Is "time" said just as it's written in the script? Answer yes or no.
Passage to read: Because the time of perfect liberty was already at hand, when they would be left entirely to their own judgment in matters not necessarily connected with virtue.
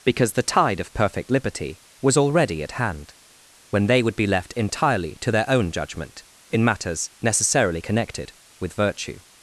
no